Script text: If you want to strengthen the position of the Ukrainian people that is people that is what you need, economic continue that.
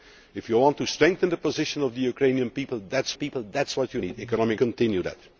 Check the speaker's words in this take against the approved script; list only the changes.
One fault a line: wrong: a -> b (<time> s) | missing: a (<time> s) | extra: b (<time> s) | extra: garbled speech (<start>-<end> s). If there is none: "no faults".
no faults